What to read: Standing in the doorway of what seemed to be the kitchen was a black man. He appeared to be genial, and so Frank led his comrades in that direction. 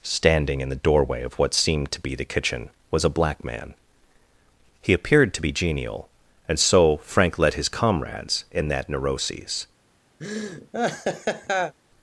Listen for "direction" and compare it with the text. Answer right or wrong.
wrong